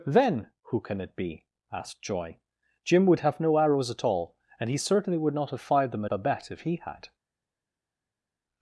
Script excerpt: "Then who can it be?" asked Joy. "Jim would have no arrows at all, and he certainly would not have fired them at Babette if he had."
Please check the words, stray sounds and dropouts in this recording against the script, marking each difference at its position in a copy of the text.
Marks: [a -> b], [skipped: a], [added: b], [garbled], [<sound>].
"Then who can it be?" asked Joy. "Jim would have no arrows at all, and he certainly would not have fired them [skipped: at] Babette if he had."